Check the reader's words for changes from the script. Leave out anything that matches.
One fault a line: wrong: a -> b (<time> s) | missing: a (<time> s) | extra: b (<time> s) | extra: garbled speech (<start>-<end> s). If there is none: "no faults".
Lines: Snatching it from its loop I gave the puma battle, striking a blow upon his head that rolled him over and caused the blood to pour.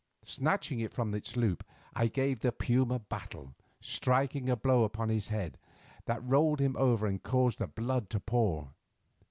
no faults